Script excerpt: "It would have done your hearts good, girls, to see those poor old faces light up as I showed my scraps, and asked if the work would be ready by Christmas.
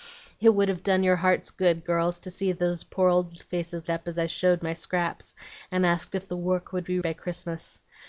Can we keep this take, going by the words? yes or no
no